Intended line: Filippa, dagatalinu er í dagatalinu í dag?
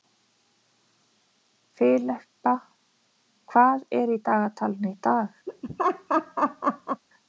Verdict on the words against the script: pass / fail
fail